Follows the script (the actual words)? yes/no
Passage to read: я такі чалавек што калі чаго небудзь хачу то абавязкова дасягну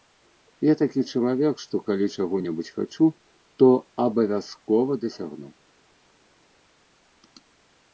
yes